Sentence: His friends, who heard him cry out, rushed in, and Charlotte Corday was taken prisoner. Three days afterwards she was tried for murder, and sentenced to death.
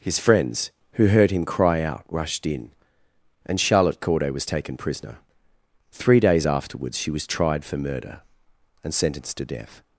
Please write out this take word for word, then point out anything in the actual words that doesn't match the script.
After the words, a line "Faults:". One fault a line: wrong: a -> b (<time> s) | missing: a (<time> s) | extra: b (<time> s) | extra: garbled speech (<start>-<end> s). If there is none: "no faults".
His friends, who heard him cry out, rushed in, and Charlotte Corday was taken prisoner. Three days afterwards she was tried for murder, and sentenced to death.
Faults:
no faults